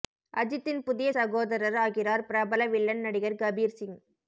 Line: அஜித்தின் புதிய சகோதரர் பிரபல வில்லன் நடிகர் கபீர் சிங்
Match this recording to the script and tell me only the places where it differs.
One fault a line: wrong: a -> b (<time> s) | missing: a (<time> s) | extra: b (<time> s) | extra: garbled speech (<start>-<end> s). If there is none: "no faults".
extra: ஆகிறார் (1.9 s)